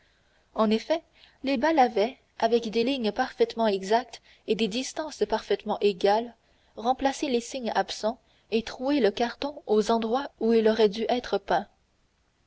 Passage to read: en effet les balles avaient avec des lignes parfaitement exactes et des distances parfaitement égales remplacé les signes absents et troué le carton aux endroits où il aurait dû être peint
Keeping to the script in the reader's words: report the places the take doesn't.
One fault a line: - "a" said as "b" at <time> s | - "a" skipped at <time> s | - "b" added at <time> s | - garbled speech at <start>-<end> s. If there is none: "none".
none